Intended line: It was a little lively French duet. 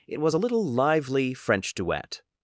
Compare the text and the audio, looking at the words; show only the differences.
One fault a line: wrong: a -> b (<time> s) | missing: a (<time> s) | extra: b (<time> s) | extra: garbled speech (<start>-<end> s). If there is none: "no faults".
no faults